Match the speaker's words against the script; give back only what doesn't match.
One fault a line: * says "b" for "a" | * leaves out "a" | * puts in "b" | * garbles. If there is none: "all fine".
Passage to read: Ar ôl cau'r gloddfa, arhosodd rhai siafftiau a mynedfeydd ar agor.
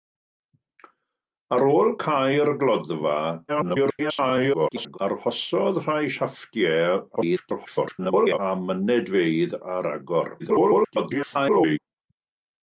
* garbles
* garbles
* garbles